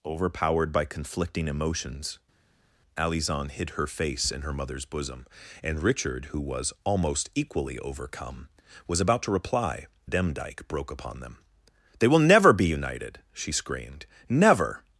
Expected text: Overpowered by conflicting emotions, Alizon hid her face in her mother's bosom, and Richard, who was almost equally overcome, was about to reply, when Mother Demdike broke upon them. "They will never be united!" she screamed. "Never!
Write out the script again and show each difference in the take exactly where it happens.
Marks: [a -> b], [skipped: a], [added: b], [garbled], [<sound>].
Overpowered by conflicting emotions, Alizon hid her face in her mother's bosom, and Richard, who was almost equally overcome, was about to reply, [skipped: when Mother] Demdike broke upon them. "They will never be united!" she screamed. "Never!